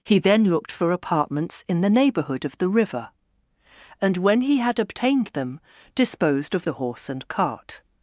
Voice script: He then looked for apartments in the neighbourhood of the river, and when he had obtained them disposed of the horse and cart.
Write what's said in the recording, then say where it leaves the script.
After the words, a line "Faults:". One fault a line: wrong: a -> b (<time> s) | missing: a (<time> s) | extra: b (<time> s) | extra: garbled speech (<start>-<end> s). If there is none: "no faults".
He then looked for apartments in the neighbourhood of the river, and when he had obtained them disposed of the horse and cart.
Faults:
no faults